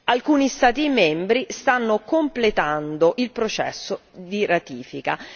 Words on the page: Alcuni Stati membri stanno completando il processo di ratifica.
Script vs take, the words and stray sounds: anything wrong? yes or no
no